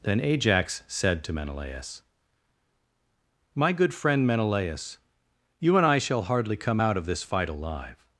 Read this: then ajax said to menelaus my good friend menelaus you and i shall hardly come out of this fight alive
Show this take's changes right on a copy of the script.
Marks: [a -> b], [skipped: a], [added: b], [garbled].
then ajax said to menelaus my good friend menelaus you and i shall hardly come out of this fight alive